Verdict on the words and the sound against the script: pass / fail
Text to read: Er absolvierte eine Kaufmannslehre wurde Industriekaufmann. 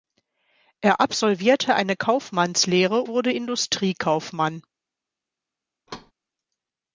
fail